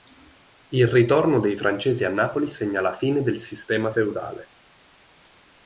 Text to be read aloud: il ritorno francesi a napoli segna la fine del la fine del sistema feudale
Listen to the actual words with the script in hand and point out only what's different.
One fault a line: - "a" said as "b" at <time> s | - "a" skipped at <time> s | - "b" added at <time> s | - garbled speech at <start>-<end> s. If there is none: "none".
- "dei" added at 1.4 s
- "la fine del" skipped at 3.4 s